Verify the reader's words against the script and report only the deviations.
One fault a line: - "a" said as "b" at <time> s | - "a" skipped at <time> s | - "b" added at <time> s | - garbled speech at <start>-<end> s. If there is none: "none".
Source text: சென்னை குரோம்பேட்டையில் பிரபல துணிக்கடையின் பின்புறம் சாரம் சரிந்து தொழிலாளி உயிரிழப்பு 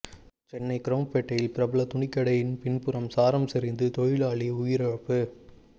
none